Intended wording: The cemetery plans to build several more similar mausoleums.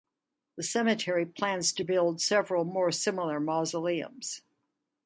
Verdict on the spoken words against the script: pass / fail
pass